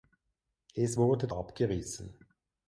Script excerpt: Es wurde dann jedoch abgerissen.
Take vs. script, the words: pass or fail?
fail